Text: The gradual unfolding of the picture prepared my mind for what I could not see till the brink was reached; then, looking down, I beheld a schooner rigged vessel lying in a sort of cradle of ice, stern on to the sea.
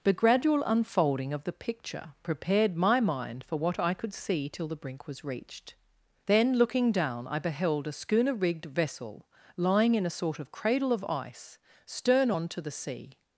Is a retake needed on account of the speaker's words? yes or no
yes